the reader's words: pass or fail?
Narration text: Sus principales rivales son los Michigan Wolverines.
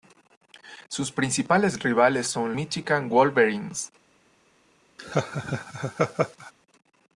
fail